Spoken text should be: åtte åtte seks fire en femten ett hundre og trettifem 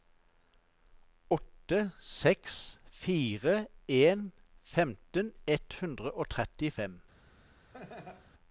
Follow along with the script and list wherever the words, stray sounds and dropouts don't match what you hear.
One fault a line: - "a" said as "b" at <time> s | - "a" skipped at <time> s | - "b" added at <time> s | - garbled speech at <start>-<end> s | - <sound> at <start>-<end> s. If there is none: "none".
- "åtte" skipped at 1.9 s
- laugh at 7.7-8.3 s